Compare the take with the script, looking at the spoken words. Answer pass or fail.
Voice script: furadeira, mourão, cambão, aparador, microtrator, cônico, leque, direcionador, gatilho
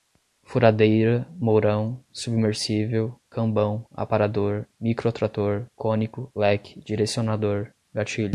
fail